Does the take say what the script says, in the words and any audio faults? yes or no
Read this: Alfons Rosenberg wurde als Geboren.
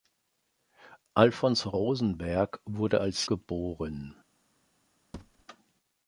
no